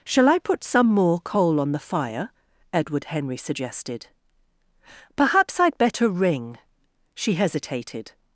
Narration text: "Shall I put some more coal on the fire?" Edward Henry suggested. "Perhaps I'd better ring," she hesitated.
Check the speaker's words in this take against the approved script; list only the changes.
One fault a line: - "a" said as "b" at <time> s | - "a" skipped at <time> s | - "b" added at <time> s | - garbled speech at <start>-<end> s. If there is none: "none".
none